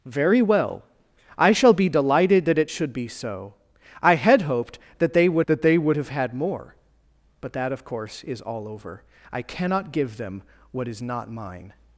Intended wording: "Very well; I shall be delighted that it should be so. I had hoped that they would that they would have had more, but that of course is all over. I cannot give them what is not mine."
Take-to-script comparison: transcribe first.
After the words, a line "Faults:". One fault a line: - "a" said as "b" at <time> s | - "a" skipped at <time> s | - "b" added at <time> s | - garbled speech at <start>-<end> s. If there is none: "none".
"Very well; I shall be delighted that it should be so. I had hoped that they would that they would have had more, but that of course is all over. I cannot give them what is not mine."
Faults:
none